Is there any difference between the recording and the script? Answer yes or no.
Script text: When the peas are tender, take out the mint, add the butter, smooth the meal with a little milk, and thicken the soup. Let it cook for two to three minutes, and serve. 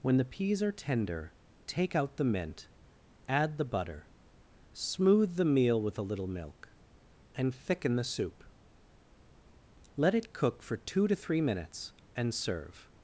no